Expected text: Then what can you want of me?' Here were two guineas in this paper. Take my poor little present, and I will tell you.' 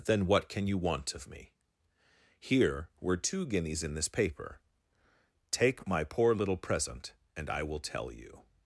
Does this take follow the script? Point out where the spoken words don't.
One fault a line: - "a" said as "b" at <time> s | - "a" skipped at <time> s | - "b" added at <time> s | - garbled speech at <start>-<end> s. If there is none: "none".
none